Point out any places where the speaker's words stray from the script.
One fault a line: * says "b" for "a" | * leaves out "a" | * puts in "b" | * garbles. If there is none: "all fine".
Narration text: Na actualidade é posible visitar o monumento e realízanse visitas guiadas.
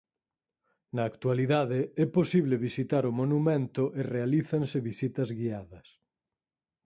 all fine